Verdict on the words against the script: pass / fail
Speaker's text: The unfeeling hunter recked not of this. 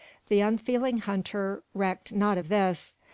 pass